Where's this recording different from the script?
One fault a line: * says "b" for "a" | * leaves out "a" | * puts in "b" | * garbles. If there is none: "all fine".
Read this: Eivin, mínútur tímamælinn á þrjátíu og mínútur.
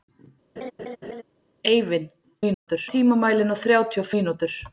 all fine